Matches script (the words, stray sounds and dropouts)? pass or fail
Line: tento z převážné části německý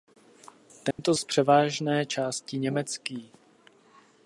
fail